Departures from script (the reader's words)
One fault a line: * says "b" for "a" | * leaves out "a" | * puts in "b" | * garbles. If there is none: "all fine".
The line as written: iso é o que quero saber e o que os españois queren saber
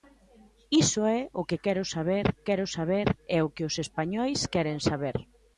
* puts in "quero saber"